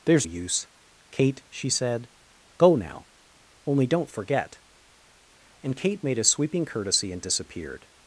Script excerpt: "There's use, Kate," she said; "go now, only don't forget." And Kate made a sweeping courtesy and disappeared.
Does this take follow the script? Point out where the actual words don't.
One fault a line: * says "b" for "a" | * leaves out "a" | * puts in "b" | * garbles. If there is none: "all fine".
all fine